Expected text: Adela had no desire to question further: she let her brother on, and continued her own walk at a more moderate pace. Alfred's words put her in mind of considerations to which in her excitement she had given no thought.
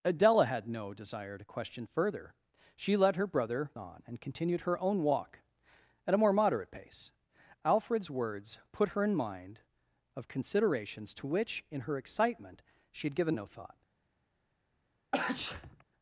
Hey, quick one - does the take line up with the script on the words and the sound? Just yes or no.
no